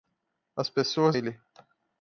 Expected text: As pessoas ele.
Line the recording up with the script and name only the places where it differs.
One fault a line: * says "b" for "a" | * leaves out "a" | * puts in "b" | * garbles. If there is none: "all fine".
all fine